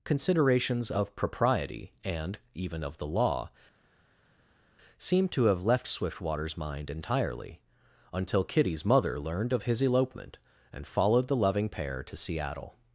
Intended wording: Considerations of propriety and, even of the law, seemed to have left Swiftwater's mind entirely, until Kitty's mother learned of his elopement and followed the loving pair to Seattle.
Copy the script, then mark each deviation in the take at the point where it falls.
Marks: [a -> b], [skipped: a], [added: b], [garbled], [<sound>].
Considerations of propriety and, even of the law, seemed to have left Swiftwater's mind entirely, until Kitty's mother learned of his elopement and followed the loving pair to Seattle.